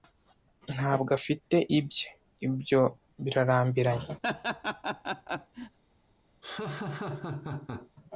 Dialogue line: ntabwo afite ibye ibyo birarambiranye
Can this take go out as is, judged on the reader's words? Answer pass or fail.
pass